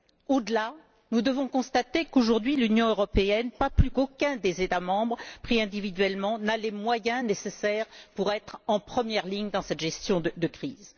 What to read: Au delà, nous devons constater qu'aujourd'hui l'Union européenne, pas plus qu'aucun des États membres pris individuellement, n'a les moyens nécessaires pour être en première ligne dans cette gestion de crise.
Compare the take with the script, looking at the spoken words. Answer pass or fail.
pass